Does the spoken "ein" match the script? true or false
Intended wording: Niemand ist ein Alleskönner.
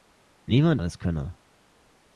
false